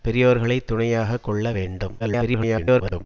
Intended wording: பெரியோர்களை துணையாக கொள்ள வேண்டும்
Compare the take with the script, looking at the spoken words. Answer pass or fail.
fail